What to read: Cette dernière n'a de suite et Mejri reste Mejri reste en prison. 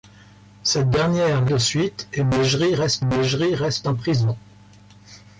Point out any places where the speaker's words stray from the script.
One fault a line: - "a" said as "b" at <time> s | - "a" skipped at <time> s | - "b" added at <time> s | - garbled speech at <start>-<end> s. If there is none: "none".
none